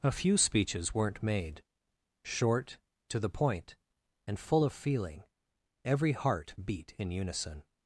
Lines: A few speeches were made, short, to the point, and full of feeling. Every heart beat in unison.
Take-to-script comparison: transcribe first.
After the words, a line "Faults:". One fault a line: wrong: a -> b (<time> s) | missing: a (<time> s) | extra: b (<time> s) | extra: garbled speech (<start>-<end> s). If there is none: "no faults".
A few speeches weren't made, short, to the point, and full of feeling. Every heart beat in unison.
Faults:
wrong: were -> weren't (0.9 s)